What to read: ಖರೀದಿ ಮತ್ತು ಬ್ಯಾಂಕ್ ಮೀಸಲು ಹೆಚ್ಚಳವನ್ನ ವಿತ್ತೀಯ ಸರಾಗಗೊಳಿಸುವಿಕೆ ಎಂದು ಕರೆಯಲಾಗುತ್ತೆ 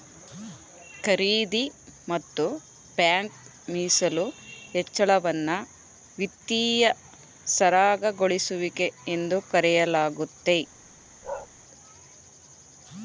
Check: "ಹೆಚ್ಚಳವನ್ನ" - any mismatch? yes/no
no